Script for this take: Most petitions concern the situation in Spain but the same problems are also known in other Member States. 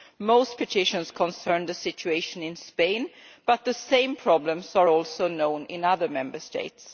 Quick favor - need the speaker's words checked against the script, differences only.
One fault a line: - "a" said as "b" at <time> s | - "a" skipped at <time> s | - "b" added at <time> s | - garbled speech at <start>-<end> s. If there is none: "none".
none